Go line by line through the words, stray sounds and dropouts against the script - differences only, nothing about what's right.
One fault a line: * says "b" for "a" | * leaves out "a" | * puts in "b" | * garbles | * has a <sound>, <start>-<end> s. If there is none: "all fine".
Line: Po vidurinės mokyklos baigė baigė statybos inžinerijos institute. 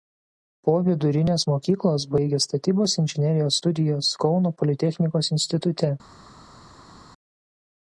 * leaves out "baigė"
* puts in "studijas Kauno politechnikos"